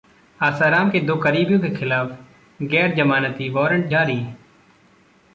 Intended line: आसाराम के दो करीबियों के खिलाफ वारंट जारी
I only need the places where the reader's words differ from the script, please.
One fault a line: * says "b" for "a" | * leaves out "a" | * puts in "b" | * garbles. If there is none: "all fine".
* puts in "गैर जमानती"